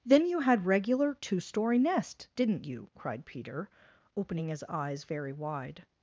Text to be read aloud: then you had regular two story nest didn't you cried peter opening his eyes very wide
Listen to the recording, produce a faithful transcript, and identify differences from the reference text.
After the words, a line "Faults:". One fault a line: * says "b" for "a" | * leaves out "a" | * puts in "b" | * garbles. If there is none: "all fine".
then you had regular two story nest didn't you cried peter opening his eyes very wide
Faults:
all fine